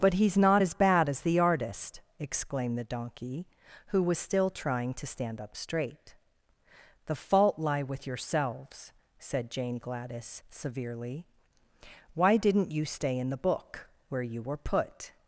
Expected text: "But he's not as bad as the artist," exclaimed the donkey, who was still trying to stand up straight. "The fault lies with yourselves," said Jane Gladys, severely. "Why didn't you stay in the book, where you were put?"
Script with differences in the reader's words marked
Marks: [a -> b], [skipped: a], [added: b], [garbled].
"But he's not as bad as the artist," exclaimed the donkey, who was still trying to stand up straight. "The fault [lies -> lie] with yourselves," said Jane Gladys, severely. "Why didn't you stay in the book, where you were put?"